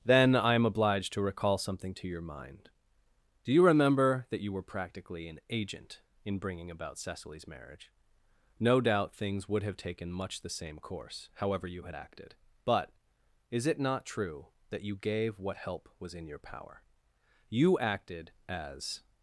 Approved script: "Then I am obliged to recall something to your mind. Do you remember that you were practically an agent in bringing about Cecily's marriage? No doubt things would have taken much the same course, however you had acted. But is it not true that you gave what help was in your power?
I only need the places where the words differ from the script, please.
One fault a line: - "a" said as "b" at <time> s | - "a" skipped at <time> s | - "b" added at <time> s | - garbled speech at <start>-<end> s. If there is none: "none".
- "You acted as" added at 17.5 s